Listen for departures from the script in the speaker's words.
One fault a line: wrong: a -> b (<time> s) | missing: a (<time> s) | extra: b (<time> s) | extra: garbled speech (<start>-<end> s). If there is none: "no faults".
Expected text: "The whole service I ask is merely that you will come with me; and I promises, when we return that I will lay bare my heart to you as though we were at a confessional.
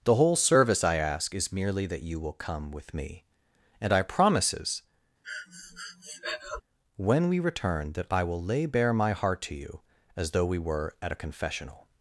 no faults